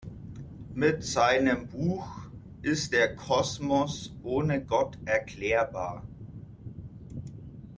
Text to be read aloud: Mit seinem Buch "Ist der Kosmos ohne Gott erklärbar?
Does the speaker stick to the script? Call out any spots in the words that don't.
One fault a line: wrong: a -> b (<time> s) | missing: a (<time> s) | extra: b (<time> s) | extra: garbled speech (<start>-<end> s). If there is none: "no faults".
no faults